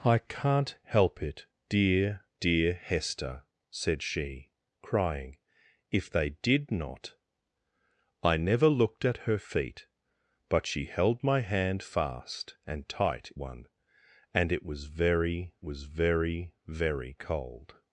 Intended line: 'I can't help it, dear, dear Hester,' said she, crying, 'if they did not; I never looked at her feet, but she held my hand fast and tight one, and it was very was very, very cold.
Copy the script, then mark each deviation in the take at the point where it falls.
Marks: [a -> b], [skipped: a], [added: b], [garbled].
'I can't help it, dear, dear Hester,' said she, crying, 'if they did not; I never looked at her feet, but she held my hand fast and tight one, and it was very was very, very cold.